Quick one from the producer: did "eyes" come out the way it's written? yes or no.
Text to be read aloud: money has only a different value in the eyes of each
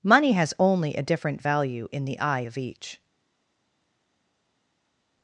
no